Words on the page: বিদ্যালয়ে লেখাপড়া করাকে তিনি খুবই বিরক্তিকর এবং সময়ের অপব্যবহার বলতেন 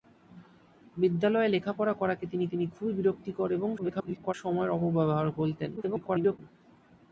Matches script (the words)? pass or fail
fail